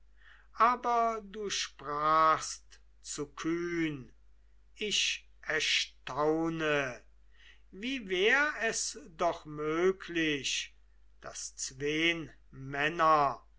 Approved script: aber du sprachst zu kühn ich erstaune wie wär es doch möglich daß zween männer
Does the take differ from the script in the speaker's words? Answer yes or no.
no